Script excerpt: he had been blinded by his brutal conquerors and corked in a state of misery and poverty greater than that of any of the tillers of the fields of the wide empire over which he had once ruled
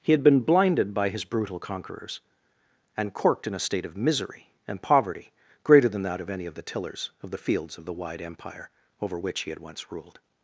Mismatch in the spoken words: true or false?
false